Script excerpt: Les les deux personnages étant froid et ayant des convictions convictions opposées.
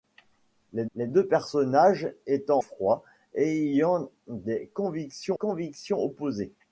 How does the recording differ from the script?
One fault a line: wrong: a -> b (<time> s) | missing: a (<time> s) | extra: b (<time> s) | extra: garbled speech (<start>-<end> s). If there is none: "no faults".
no faults